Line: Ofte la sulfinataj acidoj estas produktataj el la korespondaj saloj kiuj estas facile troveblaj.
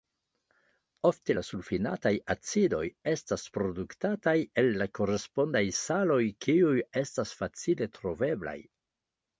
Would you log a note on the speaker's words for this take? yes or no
no